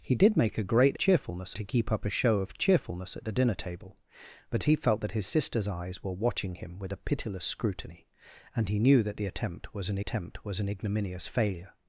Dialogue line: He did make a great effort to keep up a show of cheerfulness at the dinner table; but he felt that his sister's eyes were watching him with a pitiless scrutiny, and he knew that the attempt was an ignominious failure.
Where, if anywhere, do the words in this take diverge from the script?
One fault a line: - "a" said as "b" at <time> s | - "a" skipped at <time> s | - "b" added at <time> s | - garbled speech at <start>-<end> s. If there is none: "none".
- "effort" said as "cheerfulness" at 1.0 s
- "attempt was an" added at 10.0 s